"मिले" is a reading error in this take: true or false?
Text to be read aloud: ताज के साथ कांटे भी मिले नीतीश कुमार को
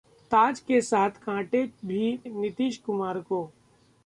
true